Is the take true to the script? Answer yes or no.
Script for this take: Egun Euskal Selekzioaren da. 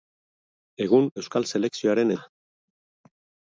yes